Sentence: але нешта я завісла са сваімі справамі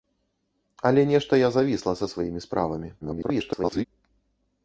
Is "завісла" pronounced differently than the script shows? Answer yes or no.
no